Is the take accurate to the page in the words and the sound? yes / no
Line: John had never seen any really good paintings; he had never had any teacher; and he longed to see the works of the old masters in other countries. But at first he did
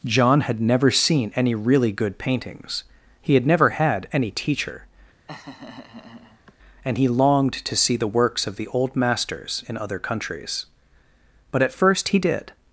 no